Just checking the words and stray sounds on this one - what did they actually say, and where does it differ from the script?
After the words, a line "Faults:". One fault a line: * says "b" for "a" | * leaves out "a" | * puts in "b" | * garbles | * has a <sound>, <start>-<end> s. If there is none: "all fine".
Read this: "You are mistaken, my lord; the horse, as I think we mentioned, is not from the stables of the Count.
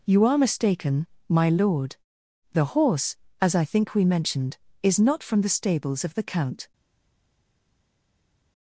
"You are mistaken, my lord; the horse, as I think we mentioned, is not from the stables of the Count.
Faults:
all fine